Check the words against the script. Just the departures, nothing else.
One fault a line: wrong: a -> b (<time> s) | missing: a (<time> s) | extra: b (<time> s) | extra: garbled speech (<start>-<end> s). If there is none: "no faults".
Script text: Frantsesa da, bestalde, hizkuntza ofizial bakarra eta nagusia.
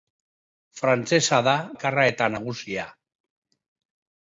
missing: bestalde hizkuntza ofizial (1.5 s)